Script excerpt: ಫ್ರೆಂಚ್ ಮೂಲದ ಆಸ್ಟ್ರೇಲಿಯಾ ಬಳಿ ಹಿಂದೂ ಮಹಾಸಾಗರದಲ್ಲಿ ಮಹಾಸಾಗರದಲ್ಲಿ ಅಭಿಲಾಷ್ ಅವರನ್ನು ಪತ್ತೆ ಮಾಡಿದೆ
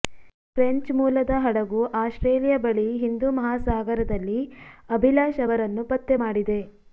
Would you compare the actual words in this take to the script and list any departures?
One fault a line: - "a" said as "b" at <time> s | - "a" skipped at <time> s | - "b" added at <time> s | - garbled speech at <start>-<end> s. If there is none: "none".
- "ಹಡಗು" added at 1.4 s
- "ಮಹಾಸಾಗರದಲ್ಲಿ" skipped at 4.4 s